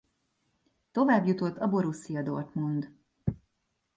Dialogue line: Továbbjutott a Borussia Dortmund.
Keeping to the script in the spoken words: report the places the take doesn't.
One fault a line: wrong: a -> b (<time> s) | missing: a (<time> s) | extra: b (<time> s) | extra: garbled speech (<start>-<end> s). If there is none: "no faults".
no faults